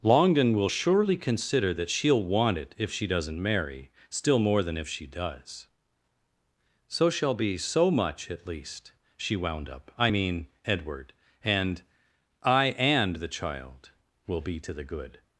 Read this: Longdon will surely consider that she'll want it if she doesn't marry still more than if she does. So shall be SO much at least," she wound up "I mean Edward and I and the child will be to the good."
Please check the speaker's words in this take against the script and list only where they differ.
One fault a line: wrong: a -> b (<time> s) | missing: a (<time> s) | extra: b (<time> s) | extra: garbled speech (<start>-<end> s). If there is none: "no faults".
no faults